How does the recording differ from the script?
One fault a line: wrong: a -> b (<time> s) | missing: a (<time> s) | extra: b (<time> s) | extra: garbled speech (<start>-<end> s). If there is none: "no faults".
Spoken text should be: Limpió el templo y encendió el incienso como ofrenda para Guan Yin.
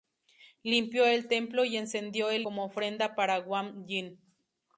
missing: incienso (2.5 s)